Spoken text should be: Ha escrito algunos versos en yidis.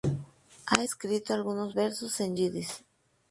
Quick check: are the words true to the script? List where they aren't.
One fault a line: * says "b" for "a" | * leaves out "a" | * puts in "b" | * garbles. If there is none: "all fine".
all fine